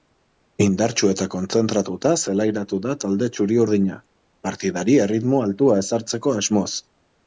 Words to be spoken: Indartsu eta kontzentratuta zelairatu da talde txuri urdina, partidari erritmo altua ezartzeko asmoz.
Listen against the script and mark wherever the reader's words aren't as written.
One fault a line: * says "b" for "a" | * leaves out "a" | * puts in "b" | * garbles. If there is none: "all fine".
all fine